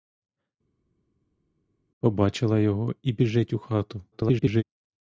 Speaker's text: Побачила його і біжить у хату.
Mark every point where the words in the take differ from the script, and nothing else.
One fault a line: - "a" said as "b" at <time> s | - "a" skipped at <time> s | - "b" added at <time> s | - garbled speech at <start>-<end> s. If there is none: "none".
- garbled speech at 4.1-4.6 s